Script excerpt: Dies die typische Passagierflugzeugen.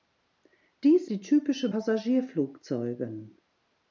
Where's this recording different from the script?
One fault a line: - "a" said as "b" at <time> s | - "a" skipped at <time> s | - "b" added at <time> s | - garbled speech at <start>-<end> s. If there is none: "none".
none